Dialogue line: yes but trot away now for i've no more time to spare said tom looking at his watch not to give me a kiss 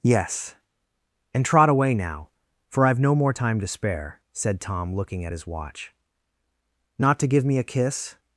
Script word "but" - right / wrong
wrong